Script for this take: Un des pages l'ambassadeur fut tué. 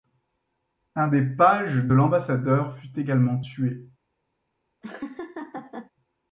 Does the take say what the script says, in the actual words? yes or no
no